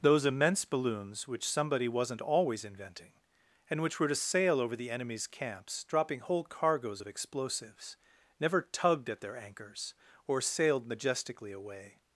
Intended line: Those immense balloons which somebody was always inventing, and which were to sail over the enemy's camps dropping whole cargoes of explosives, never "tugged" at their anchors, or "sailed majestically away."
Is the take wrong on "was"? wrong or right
wrong